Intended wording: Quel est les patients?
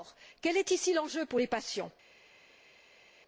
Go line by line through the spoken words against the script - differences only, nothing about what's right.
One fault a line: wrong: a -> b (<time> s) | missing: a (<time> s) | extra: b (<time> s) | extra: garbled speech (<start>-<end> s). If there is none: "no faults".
extra: ici l'enjeu pour (0.7 s)